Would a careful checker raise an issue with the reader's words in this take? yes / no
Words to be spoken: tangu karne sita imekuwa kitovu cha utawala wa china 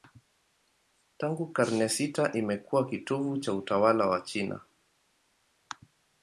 no